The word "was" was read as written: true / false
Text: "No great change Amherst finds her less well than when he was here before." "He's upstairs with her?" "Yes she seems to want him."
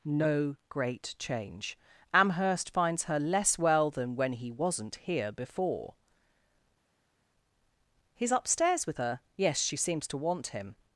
false